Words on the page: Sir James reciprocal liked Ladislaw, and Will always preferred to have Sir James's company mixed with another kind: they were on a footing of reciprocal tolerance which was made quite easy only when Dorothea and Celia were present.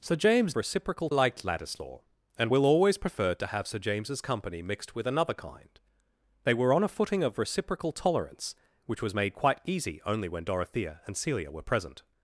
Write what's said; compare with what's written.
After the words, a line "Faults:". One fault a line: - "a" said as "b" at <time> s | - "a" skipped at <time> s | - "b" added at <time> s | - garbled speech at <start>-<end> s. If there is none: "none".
Sir James reciprocal liked Ladislaw, and Will always preferred to have Sir James's company mixed with another kind: they were on a footing of reciprocal tolerance which was made quite easy only when Dorothea and Celia were present.
Faults:
none